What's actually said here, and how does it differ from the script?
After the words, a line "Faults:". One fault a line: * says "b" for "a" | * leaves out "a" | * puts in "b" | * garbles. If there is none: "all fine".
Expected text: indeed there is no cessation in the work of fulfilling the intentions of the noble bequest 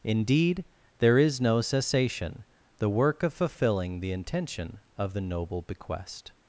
indeed there is no cessation the work of fulfilling the intention of the noble bequest
Faults:
* leaves out "in"
* says "intention" for "intentions"